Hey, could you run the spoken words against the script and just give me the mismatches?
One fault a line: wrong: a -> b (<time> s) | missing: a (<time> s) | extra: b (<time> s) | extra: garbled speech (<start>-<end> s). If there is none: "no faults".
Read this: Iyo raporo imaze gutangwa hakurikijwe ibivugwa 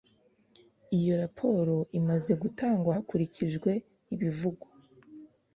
no faults